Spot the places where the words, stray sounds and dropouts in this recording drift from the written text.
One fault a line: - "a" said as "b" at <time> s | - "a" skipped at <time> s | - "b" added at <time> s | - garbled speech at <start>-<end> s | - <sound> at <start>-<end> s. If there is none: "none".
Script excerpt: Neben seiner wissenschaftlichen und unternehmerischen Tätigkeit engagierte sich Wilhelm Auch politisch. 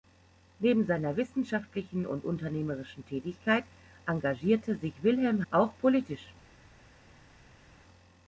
none